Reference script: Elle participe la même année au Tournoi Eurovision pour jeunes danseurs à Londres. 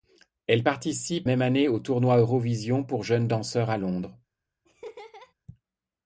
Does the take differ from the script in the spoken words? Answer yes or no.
yes